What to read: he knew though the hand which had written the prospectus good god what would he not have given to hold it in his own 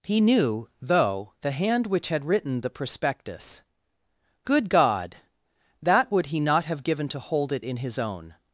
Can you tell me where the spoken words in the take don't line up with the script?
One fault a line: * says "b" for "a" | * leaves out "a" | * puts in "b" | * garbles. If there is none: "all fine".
* says "that" for "what"